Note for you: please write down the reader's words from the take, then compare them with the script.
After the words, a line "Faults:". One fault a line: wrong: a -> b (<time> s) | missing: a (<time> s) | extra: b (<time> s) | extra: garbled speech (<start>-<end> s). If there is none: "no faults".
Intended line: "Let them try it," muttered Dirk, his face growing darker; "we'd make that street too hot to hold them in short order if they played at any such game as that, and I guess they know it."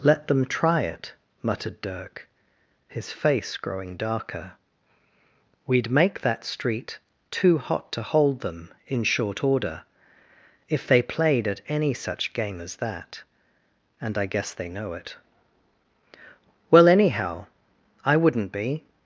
"Let them try it," muttered Dirk, his face growing darker; "we'd make that street too hot to hold them in short order if they played at any such game as that, and I guess they know it." "Well, anyhow, I wouldn't be
Faults:
extra: Well anyhow I wouldn't be (16.7 s)